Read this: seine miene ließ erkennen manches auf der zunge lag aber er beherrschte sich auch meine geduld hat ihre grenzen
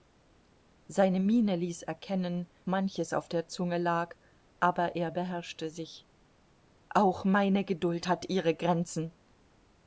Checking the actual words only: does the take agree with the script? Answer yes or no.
yes